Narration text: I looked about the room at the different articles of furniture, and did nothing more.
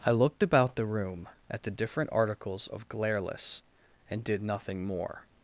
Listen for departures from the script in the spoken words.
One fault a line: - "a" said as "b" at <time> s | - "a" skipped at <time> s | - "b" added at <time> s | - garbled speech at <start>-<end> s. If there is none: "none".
- "furniture" said as "glareless" at 2.9 s